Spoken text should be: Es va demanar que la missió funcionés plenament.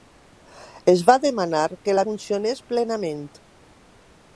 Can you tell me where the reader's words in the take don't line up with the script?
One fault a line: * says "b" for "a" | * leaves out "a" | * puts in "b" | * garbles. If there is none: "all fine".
* leaves out "missió"